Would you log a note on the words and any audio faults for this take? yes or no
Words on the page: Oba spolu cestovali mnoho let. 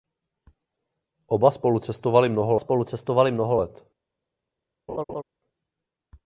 yes